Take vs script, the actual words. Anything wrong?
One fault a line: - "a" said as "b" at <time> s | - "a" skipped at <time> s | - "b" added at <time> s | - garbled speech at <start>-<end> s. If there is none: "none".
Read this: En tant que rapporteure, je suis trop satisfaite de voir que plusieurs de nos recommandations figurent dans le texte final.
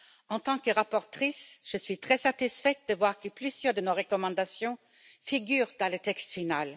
- "trop" said as "très" at 2.0 s